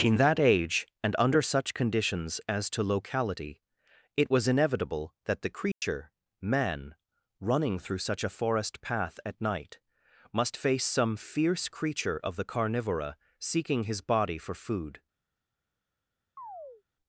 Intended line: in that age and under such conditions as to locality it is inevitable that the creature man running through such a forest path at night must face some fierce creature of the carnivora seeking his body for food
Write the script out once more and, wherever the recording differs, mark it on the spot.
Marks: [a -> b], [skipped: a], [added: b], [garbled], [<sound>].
in that age and under such conditions as to locality it [is -> was] inevitable that the creature [dropout] man running through such a forest path at night must face some fierce creature of the carnivora seeking his body for food [chirp]